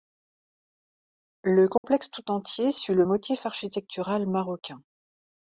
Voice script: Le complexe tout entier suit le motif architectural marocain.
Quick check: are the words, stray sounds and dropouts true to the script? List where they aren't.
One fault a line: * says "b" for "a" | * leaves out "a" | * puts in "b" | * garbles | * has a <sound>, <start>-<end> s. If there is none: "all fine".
* has a dropout, 1.8-1.8 s